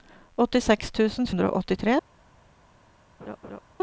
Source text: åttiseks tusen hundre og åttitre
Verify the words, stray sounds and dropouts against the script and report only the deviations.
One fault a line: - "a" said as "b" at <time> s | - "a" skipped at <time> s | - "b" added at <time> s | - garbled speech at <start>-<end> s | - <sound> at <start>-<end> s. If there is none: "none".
- laugh at 3.2-3.6 s